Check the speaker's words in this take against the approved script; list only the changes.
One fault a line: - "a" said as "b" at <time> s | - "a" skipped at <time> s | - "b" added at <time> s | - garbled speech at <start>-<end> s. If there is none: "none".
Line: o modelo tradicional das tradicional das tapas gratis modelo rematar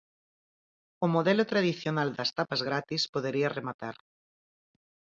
- "tradicional das" skipped at 2.3 s
- "modelo" said as "podería" at 3.1 s